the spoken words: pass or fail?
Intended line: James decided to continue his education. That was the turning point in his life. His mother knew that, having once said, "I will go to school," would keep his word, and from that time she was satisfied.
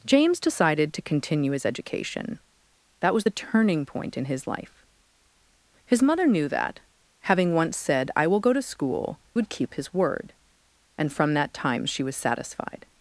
pass